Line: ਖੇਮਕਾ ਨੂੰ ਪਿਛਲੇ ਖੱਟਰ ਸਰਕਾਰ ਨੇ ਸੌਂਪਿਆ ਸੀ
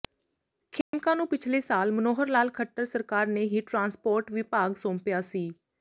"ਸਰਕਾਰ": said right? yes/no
yes